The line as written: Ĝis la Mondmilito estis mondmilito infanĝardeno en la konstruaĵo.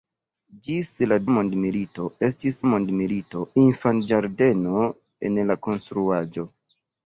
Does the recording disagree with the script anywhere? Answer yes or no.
no